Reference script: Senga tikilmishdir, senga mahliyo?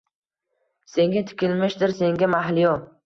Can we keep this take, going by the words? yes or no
yes